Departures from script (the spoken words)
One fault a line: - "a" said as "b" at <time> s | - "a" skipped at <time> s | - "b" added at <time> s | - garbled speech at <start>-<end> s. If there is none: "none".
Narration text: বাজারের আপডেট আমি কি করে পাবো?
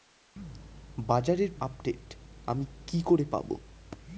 none